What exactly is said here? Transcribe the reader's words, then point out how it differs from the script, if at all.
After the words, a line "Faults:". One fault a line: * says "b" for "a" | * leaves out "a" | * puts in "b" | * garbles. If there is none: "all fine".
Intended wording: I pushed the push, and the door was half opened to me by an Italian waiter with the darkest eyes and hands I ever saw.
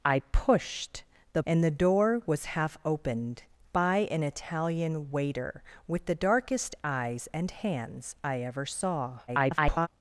I pushed the and the door was half opened by an Italian waiter with the darkest eyes and hands I ever saw. [garbled]
Faults:
* leaves out "push"
* leaves out "to me"
* garbles